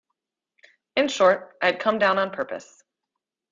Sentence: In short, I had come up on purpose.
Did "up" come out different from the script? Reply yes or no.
yes